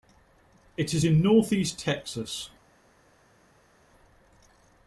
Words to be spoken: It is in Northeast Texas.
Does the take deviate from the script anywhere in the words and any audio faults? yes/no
no